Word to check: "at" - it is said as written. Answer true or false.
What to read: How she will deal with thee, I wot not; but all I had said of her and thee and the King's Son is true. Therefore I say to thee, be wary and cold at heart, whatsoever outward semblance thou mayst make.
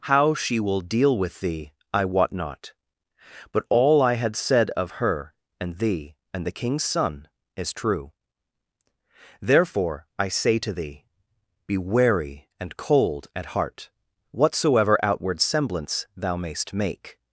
true